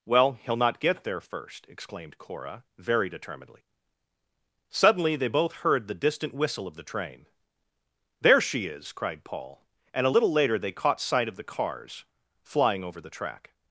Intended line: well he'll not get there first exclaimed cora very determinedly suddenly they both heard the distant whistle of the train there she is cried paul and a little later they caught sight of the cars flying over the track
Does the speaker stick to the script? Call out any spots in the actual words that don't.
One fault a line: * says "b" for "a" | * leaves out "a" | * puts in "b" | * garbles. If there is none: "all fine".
all fine